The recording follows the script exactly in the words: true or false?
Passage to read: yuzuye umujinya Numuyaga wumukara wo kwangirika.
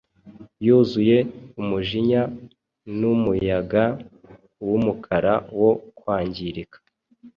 true